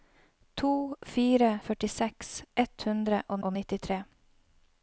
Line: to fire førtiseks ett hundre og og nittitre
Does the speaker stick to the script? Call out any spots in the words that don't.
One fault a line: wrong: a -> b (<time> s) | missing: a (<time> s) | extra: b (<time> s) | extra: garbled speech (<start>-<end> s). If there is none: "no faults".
no faults